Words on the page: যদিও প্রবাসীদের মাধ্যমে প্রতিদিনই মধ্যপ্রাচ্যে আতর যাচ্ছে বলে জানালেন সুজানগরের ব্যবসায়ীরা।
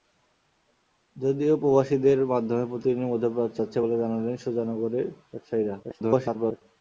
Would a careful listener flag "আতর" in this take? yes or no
yes